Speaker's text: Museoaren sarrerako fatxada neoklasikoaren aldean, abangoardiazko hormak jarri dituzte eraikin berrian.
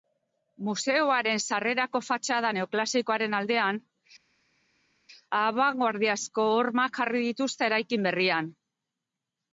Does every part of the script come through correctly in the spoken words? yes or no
yes